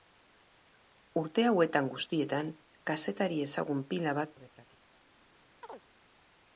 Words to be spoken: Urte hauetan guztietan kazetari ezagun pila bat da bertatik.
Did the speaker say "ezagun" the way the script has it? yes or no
yes